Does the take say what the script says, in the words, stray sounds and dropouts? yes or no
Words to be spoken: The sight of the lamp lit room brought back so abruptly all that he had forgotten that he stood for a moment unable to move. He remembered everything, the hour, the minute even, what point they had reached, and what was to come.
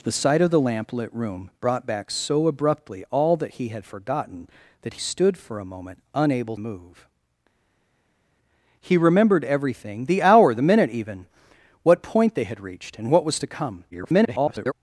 no